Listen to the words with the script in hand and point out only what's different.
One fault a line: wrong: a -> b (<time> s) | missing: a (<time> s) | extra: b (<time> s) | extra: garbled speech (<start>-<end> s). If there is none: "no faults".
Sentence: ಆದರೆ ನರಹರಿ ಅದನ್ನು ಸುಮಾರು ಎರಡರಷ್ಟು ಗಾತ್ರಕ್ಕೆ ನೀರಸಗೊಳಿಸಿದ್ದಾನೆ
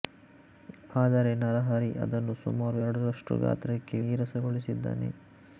no faults